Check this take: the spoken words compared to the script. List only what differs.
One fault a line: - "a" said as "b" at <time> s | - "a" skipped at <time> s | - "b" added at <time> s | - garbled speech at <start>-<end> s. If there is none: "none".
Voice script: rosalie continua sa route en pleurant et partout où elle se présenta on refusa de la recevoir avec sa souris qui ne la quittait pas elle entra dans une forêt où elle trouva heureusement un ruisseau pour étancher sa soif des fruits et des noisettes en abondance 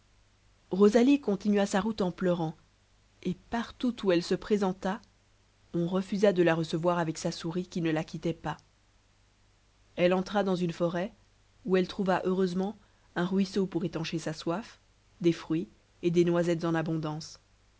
none